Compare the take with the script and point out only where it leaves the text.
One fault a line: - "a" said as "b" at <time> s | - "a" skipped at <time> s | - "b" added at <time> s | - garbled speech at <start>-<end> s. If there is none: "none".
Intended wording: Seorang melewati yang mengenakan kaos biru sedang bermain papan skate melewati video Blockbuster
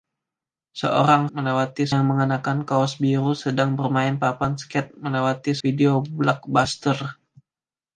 none